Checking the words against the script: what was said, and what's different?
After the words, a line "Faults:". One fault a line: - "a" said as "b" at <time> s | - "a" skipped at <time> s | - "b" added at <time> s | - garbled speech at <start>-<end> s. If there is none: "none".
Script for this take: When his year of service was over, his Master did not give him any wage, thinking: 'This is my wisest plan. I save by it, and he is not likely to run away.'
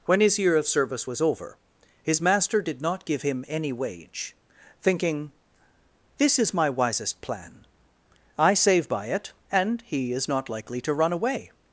When his year of service was over, his Master did not give him any wage, thinking: 'This is my wisest plan. I save by it, and he is not likely to run away.'
Faults:
none